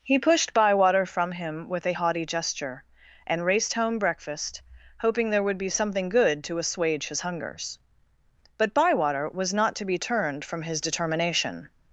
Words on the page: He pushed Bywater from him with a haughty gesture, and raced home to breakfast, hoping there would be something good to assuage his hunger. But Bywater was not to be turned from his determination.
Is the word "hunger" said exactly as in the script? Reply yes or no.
no